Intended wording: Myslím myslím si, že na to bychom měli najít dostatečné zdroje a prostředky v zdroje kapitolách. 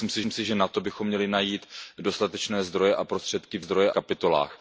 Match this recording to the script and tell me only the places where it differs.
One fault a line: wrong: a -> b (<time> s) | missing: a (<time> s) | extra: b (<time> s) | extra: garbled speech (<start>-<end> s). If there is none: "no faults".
no faults